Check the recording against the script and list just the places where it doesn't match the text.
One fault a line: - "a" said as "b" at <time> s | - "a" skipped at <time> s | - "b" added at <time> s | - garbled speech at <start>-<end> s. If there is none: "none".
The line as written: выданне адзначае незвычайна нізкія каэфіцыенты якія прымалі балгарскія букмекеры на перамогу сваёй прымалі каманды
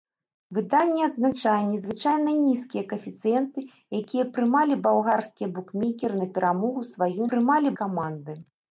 none